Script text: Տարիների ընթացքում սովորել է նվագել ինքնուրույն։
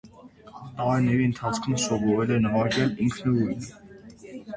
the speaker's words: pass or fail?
pass